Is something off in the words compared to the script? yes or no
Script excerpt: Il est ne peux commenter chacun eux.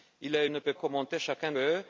no